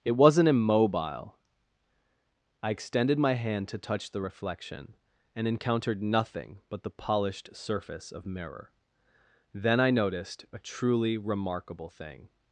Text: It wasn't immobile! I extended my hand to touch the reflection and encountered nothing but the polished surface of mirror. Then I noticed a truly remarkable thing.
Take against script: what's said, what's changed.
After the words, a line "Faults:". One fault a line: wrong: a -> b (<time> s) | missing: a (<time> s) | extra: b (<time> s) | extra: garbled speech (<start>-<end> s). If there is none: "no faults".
It wasn't immobile! I extended my hand to touch the reflection and encountered nothing but the polished surface of mirror. Then I noticed a truly remarkable thing.
Faults:
no faults